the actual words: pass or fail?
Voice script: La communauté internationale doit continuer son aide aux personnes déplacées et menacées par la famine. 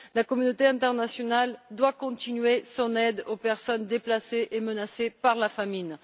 pass